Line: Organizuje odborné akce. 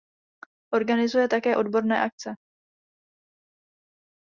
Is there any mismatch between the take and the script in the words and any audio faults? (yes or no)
yes